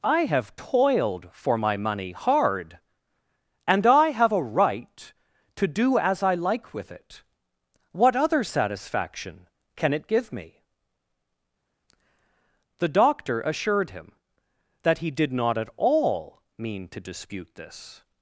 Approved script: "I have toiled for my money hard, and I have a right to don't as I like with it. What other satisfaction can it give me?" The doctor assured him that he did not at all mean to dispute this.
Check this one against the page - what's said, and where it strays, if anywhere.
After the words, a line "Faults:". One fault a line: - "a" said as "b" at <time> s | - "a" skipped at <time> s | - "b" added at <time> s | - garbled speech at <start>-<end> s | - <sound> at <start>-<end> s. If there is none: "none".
"I have toiled for my money hard, and I have a right to do as I like with it. What other satisfaction can it give me?" The doctor assured him that he did not at all mean to dispute this.
Faults:
- "don't" said as "do" at 5.7 s